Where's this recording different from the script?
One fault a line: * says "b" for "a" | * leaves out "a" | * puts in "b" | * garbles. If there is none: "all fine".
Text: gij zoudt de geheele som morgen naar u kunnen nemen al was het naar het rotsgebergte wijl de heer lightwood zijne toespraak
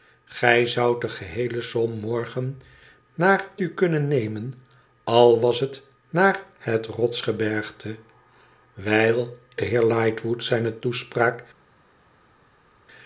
all fine